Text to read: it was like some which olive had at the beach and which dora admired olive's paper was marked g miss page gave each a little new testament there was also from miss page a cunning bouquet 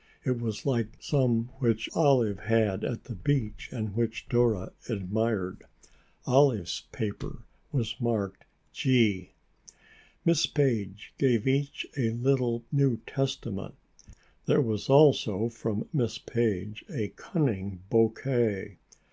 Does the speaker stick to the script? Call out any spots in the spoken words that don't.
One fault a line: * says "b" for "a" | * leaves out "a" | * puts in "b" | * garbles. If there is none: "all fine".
all fine